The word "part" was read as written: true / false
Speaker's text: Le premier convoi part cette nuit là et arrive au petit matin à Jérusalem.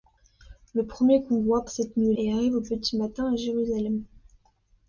false